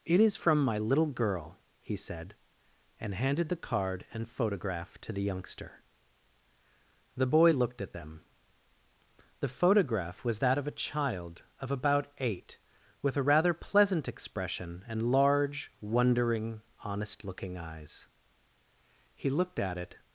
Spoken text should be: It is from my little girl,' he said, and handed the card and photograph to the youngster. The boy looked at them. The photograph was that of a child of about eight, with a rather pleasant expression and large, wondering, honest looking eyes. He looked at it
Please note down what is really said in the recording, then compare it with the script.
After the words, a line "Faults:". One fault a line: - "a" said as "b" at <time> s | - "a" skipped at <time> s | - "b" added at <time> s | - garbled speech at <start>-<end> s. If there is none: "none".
It is from my little girl,' he said, and handed the card and photograph to the youngster. The boy looked at them. The photograph was that of a child of about eight, with a rather pleasant expression and large, wondering, honest looking eyes. He looked at it
Faults:
none